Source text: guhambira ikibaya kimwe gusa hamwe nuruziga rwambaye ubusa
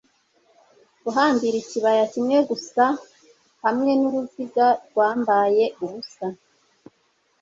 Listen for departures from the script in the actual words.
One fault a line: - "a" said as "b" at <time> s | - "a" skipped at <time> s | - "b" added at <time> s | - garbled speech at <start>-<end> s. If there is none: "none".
none